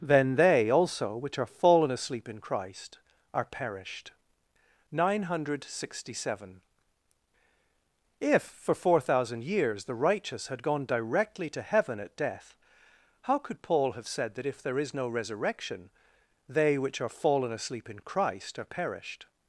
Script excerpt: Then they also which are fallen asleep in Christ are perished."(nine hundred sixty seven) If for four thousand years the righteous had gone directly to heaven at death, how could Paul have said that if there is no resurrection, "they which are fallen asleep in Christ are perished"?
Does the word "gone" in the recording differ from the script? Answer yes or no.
no